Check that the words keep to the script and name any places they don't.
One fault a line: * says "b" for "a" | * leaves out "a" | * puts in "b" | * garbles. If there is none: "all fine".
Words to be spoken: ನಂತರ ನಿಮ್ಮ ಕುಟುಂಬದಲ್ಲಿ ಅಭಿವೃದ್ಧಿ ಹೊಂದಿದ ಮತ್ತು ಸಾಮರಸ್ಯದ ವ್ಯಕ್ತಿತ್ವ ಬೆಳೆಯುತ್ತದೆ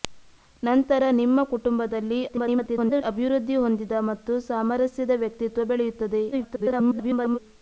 * garbles
* garbles